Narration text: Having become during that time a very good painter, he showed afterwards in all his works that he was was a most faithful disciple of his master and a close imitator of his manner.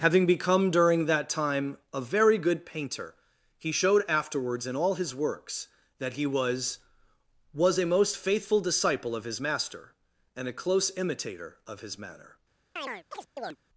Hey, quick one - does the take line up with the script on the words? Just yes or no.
yes